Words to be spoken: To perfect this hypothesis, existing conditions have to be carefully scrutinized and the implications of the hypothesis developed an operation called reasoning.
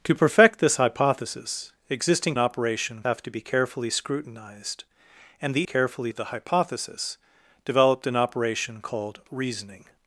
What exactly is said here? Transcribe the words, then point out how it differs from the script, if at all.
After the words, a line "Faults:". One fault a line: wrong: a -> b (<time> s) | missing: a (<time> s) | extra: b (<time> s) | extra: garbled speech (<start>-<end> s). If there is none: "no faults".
To perfect this hypothesis, existing operation have to be carefully scrutinized and the carefully of the hypothesis developed an operation called reasoning.
Faults:
wrong: conditions -> operation (2.4 s)
wrong: implications -> carefully (5.6 s)